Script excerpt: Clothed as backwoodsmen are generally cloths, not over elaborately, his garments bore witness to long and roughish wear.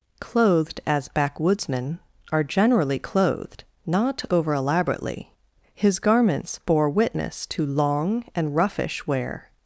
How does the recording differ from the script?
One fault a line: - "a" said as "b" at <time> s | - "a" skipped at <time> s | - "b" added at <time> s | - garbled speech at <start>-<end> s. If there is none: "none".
- "cloths" said as "clothed" at 3.0 s